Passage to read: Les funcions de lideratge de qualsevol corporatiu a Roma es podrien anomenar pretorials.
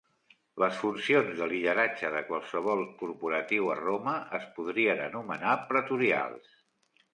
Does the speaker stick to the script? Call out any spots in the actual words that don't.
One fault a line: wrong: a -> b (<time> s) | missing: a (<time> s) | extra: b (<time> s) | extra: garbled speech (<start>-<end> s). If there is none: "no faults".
no faults